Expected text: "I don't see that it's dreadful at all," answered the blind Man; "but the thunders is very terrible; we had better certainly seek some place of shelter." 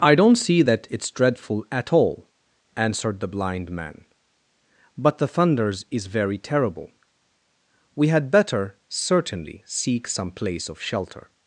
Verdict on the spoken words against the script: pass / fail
pass